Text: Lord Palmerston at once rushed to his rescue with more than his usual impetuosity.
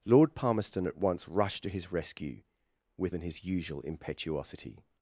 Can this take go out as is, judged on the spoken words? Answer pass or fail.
fail